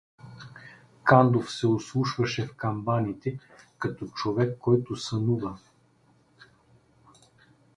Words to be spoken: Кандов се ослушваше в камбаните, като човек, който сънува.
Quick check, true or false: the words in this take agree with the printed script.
true